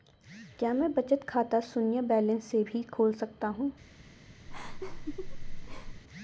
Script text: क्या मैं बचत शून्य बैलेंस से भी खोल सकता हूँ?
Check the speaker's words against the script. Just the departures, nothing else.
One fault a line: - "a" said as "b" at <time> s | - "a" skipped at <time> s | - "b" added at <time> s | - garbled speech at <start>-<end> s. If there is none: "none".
- "खाता" added at 1.3 s